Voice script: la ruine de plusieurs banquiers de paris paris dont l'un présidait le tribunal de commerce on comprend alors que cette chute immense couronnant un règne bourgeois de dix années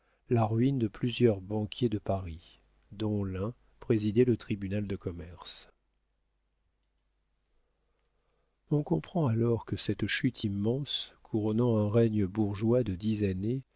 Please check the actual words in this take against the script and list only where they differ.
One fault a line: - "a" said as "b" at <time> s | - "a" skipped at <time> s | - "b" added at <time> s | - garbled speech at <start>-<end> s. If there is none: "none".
- "paris" skipped at 2.6 s